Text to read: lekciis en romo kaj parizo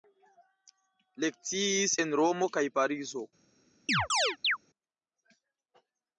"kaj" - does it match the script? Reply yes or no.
yes